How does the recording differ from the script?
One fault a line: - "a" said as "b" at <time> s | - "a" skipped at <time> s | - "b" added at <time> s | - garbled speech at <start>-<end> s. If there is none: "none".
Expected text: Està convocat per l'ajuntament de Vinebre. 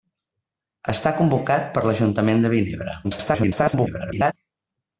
- garbled speech at 3.0-4.3 s